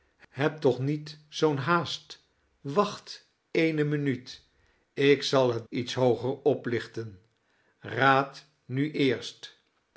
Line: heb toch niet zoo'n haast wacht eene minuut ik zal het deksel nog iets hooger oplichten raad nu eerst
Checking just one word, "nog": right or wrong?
wrong